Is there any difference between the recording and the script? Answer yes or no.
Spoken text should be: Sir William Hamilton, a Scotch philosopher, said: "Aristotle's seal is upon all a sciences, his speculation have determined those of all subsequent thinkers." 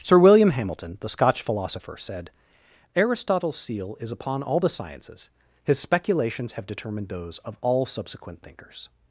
yes